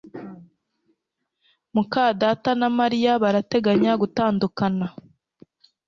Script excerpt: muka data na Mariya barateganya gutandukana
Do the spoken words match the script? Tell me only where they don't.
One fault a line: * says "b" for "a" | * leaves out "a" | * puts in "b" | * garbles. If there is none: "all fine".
all fine